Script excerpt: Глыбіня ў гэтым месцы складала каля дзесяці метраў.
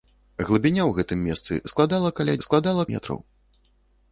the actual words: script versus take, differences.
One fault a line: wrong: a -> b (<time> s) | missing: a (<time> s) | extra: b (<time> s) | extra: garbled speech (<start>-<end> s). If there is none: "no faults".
wrong: дзесяці -> складала (2.5 s)